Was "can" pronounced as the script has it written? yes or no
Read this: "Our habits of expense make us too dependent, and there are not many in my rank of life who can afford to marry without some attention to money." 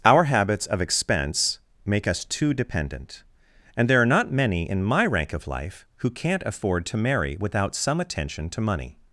no